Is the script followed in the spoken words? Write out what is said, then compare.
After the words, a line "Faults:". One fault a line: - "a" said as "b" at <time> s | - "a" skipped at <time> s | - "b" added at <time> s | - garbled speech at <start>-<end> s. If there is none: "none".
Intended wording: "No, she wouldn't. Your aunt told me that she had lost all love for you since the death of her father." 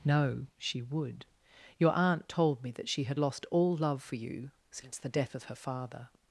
"No, she would. Your aunt told me that she had lost all love for you since the death of her father."
Faults:
- "wouldn't" said as "would" at 0.8 s